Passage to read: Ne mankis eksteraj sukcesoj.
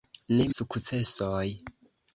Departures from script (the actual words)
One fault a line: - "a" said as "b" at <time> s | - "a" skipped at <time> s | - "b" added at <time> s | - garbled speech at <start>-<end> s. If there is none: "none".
- "mankis eksteraj" skipped at 0.5 s